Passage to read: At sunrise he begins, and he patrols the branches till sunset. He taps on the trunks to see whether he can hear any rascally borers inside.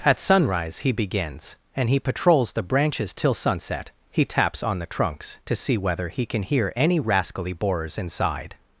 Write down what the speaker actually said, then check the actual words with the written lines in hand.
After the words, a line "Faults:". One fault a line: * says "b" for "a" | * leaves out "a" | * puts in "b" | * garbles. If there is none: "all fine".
At sunrise he begins, and he patrols the branches till sunset. He taps on the trunks to see whether he can hear any rascally borers inside.
Faults:
all fine